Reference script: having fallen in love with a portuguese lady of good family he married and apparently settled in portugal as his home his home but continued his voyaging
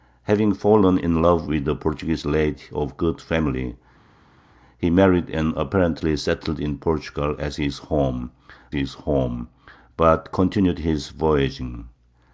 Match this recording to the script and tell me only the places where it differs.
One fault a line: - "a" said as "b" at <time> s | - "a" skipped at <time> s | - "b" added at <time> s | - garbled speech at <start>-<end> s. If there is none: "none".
none